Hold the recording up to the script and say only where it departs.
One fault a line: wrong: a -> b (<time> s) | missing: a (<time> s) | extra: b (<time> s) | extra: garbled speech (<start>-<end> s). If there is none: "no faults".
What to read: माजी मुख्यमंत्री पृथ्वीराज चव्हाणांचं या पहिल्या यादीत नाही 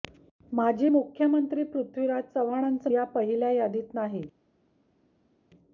no faults